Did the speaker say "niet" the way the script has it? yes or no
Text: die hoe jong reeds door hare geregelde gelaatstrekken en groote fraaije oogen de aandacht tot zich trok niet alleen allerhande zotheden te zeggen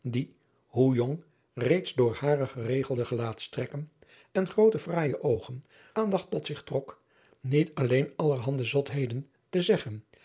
yes